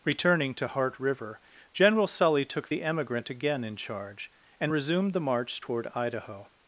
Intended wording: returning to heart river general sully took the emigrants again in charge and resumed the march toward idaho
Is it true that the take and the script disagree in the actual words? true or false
true